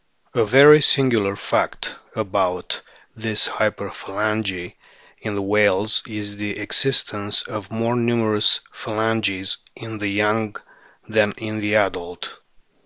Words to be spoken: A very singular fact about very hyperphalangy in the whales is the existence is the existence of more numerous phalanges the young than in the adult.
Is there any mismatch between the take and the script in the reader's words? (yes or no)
yes